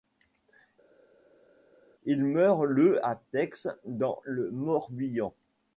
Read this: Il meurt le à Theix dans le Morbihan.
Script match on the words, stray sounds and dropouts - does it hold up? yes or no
yes